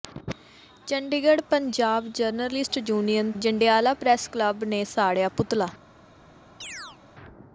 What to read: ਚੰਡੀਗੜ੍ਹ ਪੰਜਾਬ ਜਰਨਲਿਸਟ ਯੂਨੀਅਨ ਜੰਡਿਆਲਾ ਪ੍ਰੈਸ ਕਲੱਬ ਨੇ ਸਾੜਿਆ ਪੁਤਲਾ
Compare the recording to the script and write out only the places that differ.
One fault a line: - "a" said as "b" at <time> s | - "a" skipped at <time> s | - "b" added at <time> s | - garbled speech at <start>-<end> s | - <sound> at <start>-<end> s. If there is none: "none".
- chirp at 6.6-7.0 s